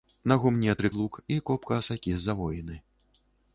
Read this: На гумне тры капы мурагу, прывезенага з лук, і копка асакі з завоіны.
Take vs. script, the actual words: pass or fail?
fail